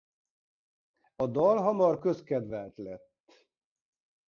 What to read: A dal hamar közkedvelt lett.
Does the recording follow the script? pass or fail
pass